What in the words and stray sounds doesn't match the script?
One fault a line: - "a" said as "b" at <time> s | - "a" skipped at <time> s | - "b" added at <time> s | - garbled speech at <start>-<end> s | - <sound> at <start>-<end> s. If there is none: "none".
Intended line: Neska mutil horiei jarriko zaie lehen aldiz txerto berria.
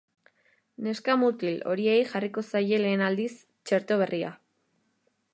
none